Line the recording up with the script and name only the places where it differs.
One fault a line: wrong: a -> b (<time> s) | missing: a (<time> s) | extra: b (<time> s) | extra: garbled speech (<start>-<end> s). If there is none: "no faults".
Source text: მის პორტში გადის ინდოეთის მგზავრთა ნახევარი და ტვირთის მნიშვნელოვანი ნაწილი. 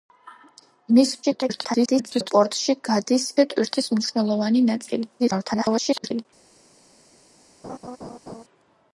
extra: garbled speech (1.2-2.3 s)
missing: ინდოეთის მგზავრთა ნახევარი (3.3 s)
extra: garbled speech (5.2-6.3 s)